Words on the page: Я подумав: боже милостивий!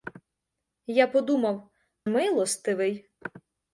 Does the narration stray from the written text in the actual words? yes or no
yes